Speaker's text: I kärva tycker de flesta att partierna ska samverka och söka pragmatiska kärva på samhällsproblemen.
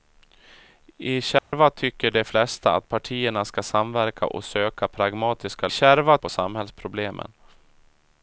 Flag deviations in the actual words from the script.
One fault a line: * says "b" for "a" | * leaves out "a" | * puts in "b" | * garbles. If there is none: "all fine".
all fine